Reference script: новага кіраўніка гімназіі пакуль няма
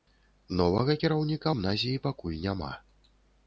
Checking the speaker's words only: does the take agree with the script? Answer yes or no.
yes